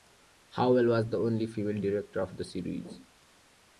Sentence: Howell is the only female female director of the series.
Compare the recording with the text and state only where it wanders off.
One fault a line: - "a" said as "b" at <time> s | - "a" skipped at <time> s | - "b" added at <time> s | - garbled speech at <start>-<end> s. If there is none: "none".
- "is" said as "was" at 0.9 s
- "female" skipped at 1.8 s